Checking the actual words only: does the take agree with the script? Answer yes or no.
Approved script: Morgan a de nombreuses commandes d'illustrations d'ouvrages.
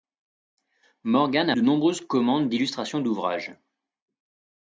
yes